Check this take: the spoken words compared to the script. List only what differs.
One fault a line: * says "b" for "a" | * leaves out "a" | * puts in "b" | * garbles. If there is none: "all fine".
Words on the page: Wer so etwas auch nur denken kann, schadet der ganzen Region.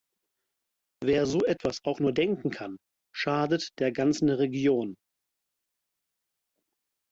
all fine